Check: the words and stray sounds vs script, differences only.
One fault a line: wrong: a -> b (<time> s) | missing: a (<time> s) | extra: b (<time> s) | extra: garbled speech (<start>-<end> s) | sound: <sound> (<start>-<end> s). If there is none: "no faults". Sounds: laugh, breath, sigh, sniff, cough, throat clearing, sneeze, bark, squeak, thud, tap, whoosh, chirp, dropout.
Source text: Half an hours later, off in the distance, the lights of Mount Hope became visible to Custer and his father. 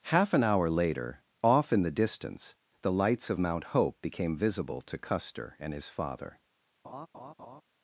wrong: hours -> hour (0.4 s)
sound: laugh (6.8-7.6 s)